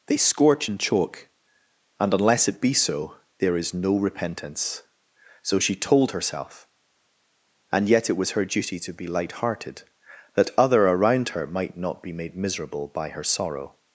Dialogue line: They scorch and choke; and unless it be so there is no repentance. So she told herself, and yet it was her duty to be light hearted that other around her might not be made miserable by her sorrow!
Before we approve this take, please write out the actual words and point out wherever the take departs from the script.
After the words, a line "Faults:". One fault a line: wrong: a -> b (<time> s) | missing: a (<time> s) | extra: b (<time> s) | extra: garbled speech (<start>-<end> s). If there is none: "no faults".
They scorch and choke; and unless it be so there is no repentance. So she told herself, and yet it was her duty to be light hearted that other around her might not be made miserable by her sorrow!
Faults:
no faults